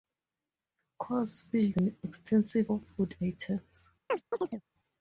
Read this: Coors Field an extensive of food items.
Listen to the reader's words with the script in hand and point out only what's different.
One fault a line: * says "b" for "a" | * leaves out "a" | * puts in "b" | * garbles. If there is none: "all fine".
all fine